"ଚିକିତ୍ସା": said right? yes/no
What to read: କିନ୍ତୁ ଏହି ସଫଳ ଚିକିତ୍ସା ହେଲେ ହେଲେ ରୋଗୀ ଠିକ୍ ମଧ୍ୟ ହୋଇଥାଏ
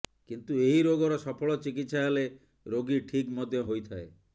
yes